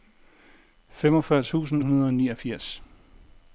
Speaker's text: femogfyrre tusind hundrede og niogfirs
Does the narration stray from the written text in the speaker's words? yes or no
no